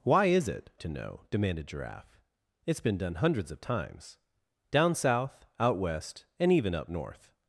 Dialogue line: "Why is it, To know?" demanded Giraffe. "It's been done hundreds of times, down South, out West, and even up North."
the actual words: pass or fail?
pass